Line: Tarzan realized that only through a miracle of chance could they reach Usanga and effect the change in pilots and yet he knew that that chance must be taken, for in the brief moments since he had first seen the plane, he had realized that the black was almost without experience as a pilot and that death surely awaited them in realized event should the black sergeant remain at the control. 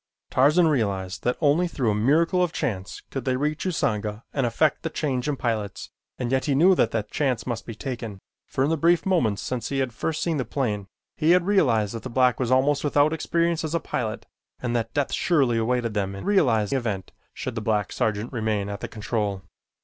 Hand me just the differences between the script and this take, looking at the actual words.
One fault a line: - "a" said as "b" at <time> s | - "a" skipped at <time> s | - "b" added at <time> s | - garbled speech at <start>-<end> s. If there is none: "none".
none